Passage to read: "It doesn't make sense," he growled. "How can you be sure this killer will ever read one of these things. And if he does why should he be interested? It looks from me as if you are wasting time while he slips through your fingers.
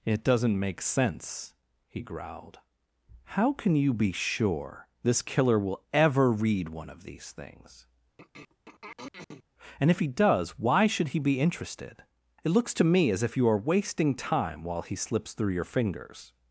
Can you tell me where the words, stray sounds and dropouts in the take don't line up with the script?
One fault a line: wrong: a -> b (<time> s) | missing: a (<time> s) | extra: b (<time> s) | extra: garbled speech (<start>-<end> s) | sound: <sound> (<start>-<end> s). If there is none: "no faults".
sound: throat clearing (8.2-9.4 s)
wrong: from -> to (12.7 s)